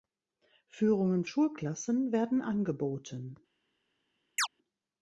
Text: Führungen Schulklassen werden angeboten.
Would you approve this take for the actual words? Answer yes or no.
yes